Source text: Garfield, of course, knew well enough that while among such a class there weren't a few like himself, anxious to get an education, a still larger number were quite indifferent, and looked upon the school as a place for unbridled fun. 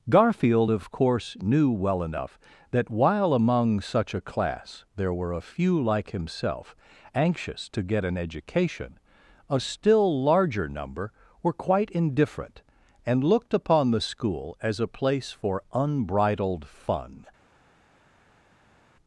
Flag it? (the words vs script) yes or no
yes